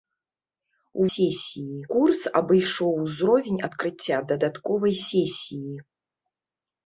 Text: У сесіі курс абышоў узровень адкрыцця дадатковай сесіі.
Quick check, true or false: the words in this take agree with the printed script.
true